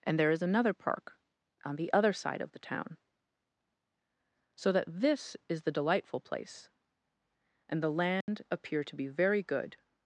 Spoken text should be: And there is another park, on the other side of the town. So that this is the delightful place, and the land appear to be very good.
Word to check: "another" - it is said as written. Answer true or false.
true